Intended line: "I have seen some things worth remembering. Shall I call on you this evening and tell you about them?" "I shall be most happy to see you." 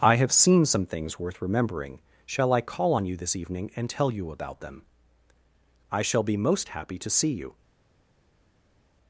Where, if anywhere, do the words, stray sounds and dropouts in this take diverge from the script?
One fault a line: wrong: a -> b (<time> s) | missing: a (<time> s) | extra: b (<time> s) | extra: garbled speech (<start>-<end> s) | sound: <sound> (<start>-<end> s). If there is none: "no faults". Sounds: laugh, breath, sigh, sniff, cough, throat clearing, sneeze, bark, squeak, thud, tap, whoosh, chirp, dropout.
no faults